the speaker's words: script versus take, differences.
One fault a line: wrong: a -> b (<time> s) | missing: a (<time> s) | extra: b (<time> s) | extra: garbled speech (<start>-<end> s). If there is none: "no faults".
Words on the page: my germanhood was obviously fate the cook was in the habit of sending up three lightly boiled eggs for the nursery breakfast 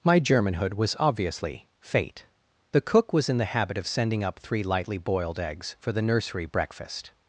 no faults